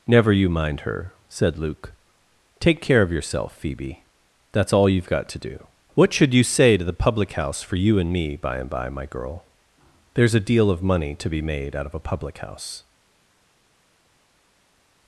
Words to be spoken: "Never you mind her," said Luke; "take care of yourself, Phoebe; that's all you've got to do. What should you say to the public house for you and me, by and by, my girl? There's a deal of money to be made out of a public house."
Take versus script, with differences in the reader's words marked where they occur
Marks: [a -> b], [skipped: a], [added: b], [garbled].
"Never you mind her," said Luke; "take care of yourself, Phoebe; that's all you've got to do. What should you say to the public house for you and me, by and by, my girl? There's a deal of money to be made out of a public house."